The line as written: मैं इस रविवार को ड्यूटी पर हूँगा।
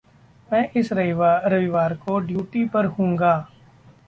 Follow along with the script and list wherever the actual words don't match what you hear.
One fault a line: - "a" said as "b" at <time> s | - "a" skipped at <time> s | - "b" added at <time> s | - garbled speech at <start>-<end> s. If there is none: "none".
none